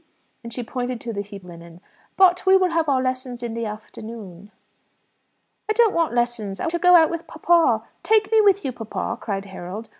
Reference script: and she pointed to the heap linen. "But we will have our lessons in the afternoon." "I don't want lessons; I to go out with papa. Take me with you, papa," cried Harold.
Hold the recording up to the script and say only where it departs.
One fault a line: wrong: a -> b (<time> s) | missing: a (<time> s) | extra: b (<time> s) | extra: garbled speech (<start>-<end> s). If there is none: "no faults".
no faults